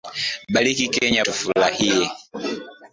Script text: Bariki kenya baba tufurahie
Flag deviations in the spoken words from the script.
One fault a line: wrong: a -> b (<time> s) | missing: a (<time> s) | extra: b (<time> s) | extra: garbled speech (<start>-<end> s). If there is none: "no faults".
missing: baba (1.2 s)